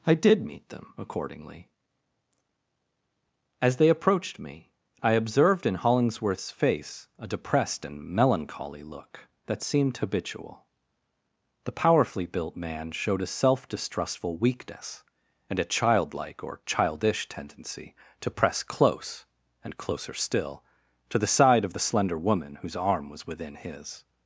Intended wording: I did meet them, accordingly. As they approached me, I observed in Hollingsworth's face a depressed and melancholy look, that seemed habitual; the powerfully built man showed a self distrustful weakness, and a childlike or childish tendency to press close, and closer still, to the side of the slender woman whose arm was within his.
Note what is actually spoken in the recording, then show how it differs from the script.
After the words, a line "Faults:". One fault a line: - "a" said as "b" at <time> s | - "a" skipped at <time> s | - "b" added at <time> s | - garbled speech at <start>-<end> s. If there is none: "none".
I did meet them, accordingly. As they approached me, I observed in Hollingsworth's face a depressed and melancholy look, that seemed habitual; the powerfully built man showed a self distrustful weakness, and a childlike or childish tendency to press close, and closer still, to the side of the slender woman whose arm was within his.
Faults:
none